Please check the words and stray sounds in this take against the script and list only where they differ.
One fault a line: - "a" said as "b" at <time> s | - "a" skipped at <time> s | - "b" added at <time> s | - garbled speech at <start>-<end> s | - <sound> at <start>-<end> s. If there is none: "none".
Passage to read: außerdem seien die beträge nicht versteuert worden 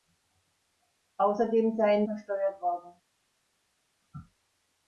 - "die beträge nicht" skipped at 2.1 s